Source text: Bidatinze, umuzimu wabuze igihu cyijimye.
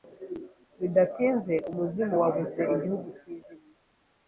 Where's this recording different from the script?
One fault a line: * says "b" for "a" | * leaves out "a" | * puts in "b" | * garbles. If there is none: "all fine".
all fine